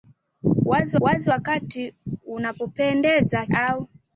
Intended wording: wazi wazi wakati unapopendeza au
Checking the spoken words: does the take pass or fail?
pass